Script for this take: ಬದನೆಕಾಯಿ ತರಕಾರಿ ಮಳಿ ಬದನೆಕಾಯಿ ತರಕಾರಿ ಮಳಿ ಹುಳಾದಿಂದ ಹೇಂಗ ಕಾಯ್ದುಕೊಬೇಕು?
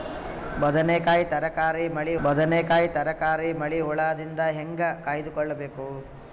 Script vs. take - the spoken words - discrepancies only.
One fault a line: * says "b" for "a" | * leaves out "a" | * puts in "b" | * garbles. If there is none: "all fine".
all fine